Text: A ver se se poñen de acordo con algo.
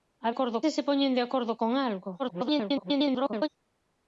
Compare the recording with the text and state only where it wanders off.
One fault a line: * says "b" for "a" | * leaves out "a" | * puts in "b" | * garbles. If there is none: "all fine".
* says "acordo" for "ver"
* garbles